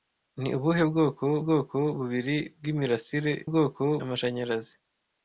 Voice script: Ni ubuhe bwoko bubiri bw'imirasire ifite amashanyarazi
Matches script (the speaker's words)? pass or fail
fail